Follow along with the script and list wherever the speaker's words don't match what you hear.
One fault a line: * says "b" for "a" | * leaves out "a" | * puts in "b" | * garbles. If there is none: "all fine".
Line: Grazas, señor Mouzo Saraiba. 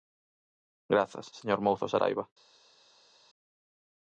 all fine